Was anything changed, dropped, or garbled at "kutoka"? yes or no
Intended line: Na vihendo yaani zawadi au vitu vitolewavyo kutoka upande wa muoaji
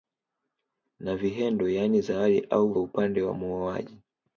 yes